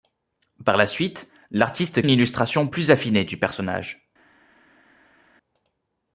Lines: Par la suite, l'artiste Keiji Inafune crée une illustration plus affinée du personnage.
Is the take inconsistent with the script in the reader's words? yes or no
yes